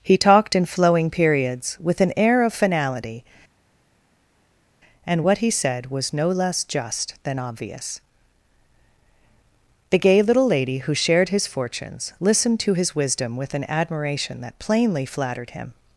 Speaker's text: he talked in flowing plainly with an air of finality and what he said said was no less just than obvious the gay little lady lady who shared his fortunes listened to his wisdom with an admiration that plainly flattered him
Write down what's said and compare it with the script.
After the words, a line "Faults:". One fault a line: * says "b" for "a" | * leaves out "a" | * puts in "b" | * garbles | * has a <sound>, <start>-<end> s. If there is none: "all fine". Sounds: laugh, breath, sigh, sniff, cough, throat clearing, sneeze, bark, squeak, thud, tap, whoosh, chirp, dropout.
he talked in flowing periods with an air of finality and what he said was no less just than obvious the gay little lady who shared his fortunes listened to his wisdom with an admiration that plainly flattered him
Faults:
* says "periods" for "plainly"
* leaves out "said"
* leaves out "lady"